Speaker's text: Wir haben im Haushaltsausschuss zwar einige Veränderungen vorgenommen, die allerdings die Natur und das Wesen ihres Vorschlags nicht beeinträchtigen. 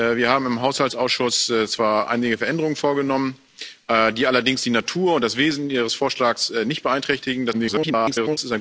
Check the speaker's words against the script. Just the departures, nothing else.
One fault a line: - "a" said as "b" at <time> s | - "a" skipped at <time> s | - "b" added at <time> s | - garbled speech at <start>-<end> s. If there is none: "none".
- garbled speech at 7.5-8.4 s